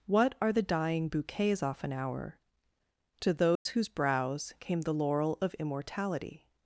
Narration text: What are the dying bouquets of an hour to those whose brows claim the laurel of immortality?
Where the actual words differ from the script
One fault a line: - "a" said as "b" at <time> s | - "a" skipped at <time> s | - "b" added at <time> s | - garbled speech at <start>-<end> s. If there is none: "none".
- "of" said as "off" at 1.6 s
- "claim" said as "came" at 4.6 s